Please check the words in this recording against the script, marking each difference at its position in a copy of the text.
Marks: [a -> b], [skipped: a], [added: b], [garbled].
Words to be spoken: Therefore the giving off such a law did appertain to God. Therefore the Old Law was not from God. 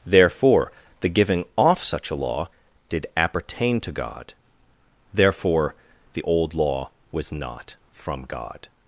Therefore the giving off such a law did appertain to God. Therefore the Old Law was not from God.